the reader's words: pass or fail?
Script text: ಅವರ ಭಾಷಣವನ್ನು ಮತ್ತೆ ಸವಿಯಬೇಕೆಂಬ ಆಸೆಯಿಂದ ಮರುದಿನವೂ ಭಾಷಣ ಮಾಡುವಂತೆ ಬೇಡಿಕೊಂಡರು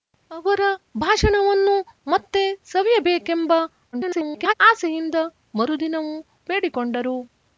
fail